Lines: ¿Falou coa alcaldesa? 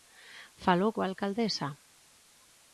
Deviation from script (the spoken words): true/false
false